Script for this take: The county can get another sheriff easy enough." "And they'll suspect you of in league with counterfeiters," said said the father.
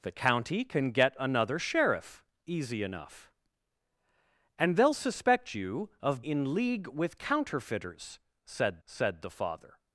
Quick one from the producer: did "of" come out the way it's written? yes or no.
yes